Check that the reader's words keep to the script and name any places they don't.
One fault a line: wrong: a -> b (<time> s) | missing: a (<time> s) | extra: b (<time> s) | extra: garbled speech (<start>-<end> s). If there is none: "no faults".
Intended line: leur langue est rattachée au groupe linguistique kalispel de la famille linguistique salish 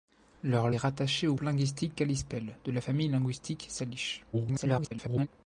missing: langue (0.7 s)
missing: groupe (1.3 s)
extra: garbled speech (4.3-5.3 s)